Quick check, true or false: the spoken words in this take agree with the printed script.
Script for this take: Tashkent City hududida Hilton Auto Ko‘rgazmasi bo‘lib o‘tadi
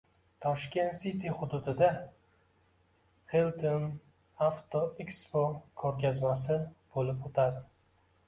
false